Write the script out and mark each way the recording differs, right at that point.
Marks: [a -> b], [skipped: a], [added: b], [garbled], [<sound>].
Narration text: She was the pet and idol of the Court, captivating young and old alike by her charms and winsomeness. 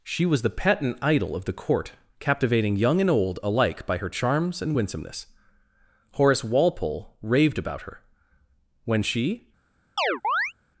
She was the pet and idol of the Court, captivating young and old alike by her charms and winsomeness. [added: Horace Walpole raved about her When she] [chirp]